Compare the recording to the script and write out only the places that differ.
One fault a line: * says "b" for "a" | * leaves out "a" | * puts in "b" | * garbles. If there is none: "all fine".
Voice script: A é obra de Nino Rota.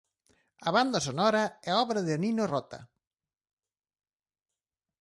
* puts in "banda sonora"